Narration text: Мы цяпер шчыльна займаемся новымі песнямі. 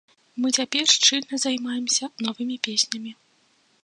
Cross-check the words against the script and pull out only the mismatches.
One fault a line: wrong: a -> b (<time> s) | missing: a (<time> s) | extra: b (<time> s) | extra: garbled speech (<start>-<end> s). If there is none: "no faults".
no faults